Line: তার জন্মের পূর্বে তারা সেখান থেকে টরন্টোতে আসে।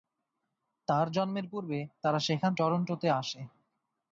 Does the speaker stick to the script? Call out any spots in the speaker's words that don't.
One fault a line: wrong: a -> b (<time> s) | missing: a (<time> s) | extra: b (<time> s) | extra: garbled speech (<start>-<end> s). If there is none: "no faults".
missing: থেকে (2.5 s)